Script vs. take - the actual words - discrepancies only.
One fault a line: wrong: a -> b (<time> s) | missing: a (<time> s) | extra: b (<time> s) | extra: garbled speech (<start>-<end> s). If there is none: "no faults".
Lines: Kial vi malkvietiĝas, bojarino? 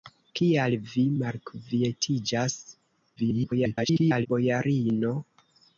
extra: garbled speech (3.2-4.3 s)